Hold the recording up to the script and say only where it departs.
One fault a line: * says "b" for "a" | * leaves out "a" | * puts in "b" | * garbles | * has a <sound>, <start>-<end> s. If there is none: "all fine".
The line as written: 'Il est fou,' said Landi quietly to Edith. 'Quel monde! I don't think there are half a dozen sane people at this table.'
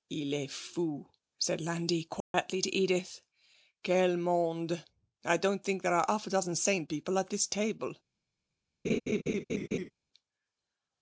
* has a dropout, 2.2-2.3 s
* has a laugh, 8.8-9.9 s